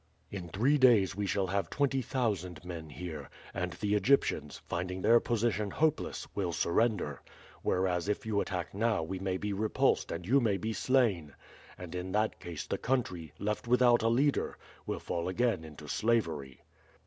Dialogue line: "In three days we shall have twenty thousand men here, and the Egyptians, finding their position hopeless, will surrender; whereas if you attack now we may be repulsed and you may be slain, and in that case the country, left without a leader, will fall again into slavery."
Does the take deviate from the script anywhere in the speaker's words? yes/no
no